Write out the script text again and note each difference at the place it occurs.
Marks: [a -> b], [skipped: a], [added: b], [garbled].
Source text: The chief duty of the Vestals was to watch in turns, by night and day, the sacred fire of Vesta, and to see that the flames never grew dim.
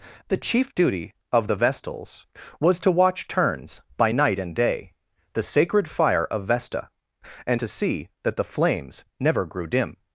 The chief duty of the Vestals was to watch [skipped: in] turns, by night and day, the sacred fire of Vesta, and to see that the flames never grew dim.